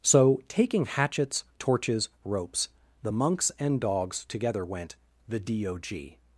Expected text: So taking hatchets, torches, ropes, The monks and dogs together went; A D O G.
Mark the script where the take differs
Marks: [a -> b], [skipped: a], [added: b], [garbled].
So taking hatchets, torches, ropes, The monks and dogs together went; [A -> THE] D O G.